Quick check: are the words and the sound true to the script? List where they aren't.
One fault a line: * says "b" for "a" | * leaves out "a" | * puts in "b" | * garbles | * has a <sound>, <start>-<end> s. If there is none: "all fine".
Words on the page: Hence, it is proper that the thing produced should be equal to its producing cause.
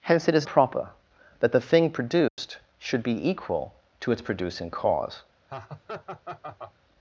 * has a dropout, 2.3-2.4 s
* has a laugh, 5.5-6.7 s